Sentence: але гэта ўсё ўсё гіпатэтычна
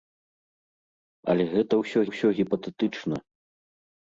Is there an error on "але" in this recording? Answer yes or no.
no